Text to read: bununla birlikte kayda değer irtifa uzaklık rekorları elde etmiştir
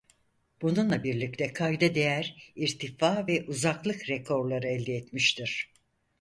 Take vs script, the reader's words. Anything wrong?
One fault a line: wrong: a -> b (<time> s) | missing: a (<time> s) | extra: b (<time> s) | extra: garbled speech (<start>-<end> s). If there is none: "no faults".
extra: ve (3.3 s)